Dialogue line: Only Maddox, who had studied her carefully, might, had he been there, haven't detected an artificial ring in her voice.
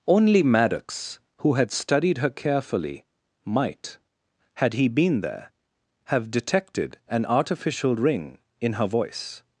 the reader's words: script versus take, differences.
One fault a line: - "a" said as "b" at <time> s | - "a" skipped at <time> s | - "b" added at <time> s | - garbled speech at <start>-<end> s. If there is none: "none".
- "haven't" said as "have" at 6.0 s